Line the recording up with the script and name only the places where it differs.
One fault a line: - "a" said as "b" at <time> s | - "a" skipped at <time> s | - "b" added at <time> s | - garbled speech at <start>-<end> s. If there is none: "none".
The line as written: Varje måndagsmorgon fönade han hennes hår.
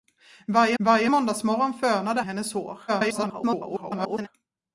- "varje" added at 0.8 s
- "han" skipped at 2.2 s
- garbled speech at 2.9-4.3 s